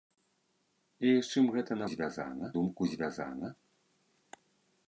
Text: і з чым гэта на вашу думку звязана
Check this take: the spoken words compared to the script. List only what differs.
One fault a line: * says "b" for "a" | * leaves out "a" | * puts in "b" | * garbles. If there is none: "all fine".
* says "звязана" for "вашу"